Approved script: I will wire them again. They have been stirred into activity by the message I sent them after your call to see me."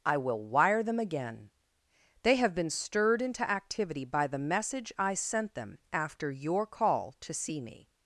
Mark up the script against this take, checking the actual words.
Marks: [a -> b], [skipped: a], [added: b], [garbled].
I will wire them again. They have been stirred into activity by the message I sent them after your call to see me."